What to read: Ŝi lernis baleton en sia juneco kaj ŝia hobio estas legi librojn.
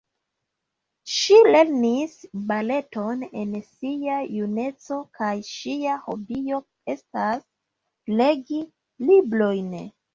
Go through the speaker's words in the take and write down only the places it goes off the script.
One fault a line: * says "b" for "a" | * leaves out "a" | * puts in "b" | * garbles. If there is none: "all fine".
all fine